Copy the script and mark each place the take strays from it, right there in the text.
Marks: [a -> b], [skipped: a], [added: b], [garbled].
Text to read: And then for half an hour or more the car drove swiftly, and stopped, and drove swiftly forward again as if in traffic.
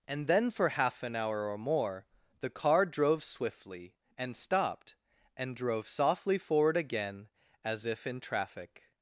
And then for half an hour or more the car drove swiftly, and stopped, and drove [swiftly -> softly] forward again as if in traffic.